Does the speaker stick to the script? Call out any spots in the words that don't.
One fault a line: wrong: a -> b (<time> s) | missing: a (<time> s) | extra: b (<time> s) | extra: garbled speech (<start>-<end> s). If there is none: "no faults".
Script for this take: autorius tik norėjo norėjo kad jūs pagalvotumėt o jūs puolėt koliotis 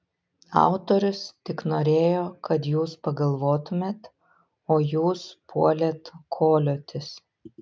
missing: norėjo (2.2 s)